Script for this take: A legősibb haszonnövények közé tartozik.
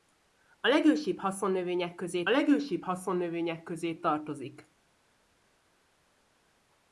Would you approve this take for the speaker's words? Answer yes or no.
no